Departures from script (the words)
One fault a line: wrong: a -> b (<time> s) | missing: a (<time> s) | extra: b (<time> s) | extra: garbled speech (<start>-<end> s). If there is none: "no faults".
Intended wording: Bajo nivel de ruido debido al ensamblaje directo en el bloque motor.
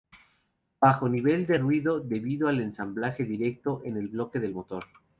extra: del (4.4 s)